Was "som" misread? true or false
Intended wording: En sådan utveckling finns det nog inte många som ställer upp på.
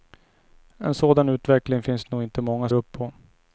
true